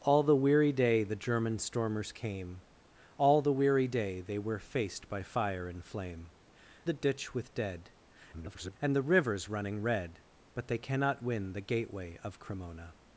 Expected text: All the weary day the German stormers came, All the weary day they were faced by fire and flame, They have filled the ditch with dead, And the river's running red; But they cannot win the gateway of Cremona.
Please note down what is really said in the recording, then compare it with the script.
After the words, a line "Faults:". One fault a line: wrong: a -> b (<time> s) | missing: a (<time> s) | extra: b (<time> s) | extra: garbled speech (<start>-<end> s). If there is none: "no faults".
All the weary day the German stormers came, All the weary day they were faced by fire and flame, The ditch with dead, [garbled] And the river's running red; But they cannot win the gateway of Cremona.
Faults:
missing: They have filled (6.3 s)
extra: garbled speech (8.3-8.8 s)